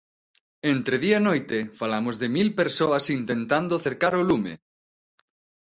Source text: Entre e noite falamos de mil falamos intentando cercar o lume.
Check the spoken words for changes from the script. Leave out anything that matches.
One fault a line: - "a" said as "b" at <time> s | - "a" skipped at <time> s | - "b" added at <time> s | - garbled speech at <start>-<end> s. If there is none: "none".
- "día" added at 1.1 s
- "falamos" said as "persoas" at 2.6 s